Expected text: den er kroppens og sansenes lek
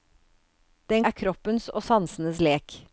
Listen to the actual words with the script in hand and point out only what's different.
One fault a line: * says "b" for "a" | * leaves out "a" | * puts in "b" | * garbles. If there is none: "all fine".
all fine